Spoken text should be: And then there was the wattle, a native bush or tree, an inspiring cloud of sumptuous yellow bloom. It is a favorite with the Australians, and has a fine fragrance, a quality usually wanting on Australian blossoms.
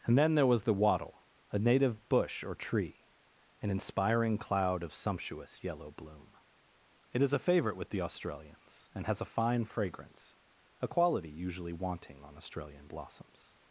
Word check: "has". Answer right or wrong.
right